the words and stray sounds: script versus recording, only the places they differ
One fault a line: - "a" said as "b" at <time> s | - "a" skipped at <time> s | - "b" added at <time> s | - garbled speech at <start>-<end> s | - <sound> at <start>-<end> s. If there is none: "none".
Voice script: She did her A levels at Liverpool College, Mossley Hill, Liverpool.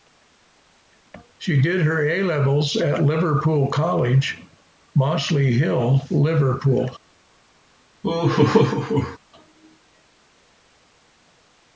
- laugh at 8.0-9.2 s